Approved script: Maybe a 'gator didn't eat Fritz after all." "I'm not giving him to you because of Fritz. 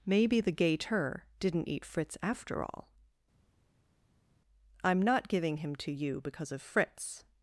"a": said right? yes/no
no